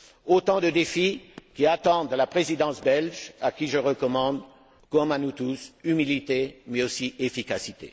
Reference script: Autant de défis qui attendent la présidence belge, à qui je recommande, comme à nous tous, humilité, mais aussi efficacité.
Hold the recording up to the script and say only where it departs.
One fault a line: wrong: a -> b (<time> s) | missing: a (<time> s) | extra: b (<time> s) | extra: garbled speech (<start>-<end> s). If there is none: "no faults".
no faults